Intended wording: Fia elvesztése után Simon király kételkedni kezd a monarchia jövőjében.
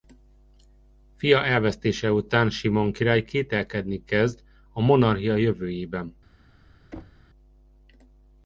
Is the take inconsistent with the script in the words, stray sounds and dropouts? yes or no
yes